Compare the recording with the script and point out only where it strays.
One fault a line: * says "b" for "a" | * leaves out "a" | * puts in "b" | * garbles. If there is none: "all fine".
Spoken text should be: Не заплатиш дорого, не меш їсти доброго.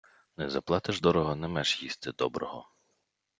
all fine